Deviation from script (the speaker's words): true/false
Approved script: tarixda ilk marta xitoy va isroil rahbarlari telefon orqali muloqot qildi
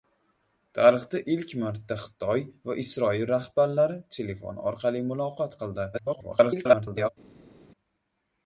true